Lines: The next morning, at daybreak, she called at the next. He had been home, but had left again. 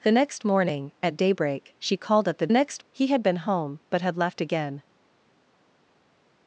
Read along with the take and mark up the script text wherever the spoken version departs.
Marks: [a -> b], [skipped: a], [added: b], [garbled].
The next morning, at daybreak, she called at the next. He had been home, but had left again.